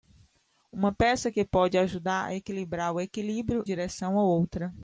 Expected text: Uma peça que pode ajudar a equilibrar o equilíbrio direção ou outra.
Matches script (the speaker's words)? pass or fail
pass